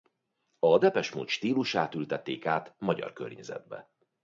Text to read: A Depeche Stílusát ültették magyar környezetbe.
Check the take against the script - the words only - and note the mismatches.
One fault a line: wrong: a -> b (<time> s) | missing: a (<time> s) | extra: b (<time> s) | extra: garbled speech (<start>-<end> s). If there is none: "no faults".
extra: Mode (1.1 s)
extra: át (2.5 s)